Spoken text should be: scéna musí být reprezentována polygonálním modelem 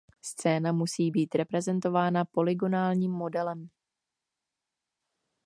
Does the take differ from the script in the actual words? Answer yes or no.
no